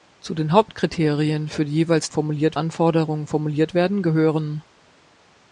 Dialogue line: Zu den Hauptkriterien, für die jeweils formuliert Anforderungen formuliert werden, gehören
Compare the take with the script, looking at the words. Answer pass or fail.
pass